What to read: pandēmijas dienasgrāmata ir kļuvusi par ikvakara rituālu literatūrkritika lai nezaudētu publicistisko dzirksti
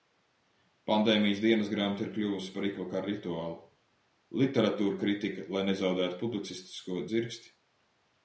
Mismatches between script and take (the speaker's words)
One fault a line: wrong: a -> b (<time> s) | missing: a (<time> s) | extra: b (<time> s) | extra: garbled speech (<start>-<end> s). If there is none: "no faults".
no faults